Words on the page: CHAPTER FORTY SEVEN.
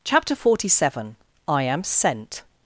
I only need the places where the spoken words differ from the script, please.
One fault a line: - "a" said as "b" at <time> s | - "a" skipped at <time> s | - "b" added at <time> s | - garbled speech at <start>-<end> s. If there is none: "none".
- "I AM SENT" added at 1.5 s